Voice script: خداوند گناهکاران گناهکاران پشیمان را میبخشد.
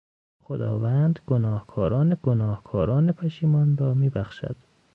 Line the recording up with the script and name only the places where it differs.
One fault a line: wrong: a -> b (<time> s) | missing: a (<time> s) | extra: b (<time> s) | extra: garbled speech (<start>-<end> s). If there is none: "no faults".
no faults